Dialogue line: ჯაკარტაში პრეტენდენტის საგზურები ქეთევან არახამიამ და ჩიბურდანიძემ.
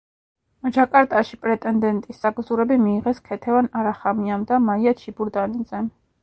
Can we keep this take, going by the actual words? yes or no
no